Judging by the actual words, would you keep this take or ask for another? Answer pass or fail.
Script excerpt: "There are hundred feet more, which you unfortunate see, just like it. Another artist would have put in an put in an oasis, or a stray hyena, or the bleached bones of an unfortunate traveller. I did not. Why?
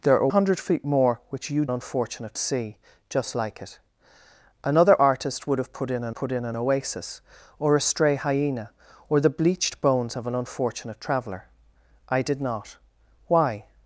pass